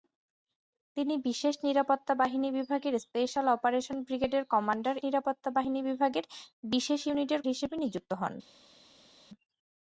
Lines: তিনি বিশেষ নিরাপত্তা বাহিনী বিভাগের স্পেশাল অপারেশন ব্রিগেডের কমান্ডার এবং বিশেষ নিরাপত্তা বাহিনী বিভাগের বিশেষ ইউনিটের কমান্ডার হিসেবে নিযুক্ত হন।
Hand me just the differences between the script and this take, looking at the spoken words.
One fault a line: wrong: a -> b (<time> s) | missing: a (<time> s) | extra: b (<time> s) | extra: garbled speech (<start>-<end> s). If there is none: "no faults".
missing: এবং বিশেষ (5.0 s)
missing: কমান্ডার (7.4 s)